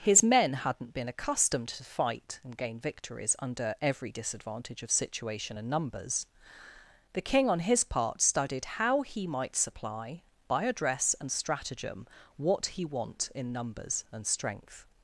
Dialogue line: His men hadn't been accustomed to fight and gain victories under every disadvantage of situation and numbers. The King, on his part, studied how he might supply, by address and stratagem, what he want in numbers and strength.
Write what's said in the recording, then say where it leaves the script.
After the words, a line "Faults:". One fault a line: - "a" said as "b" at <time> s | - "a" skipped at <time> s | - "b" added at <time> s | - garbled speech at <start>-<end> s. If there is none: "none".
His men hadn't been accustomed to fight and gain victories under every disadvantage of situation and numbers. The King, on his part, studied how he might supply, by address and stratagem, what he want in numbers and strength.
Faults:
none